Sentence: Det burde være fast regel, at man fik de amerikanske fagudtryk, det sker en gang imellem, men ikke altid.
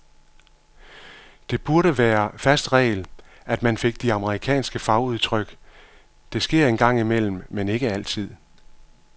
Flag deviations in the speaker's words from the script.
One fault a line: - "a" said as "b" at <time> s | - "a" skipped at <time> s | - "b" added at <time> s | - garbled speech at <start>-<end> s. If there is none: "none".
none